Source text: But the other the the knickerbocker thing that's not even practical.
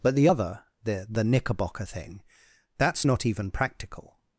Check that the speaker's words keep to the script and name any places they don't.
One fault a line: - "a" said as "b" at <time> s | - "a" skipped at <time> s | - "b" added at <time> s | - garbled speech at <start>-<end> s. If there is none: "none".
none